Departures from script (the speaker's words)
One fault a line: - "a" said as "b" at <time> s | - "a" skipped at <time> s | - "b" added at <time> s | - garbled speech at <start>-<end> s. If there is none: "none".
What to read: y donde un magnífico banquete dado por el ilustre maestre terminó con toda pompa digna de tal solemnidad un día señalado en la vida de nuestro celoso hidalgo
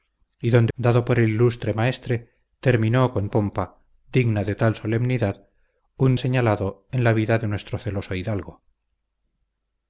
- "un magnífico banquete" skipped at 0.7 s
- "toda" skipped at 3.3 s
- "día" skipped at 6.2 s